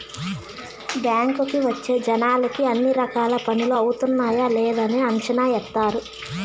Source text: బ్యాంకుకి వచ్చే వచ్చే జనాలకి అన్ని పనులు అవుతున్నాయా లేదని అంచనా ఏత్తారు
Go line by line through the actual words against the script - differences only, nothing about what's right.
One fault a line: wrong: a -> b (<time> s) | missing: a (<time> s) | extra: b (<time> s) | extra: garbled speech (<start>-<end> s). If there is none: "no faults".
missing: వచ్చే (1.9 s)
extra: రకాల (3.0 s)